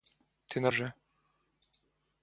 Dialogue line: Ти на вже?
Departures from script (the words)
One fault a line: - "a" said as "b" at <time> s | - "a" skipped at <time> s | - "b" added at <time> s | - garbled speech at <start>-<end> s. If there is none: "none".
none